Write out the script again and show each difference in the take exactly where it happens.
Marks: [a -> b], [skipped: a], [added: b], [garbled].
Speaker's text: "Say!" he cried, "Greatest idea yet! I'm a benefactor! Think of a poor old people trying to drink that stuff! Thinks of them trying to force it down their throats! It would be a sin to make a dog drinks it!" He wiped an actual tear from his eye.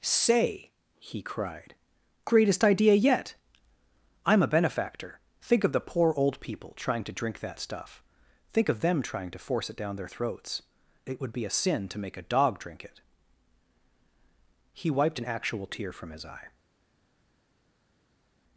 "Say!" he cried, "Greatest idea yet! I'm a benefactor! Think of [a -> the] poor old people trying to drink that stuff! [Thinks -> Think] of them trying to force it down their throats! It would be a sin to make a dog [drinks -> drink] it!" He wiped an actual tear from his eye.